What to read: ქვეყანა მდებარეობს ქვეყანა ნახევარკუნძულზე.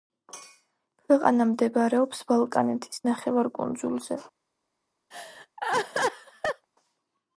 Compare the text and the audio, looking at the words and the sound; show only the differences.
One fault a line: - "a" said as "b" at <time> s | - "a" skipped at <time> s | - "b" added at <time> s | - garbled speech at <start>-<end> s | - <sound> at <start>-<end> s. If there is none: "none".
- "ქვეყანა" said as "ბალკანეთის" at 2.3 s
- laugh at 5.1-6.7 s